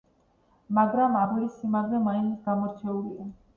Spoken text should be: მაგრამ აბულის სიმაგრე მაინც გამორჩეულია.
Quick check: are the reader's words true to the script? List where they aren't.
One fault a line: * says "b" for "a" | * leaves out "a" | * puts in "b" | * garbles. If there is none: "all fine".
all fine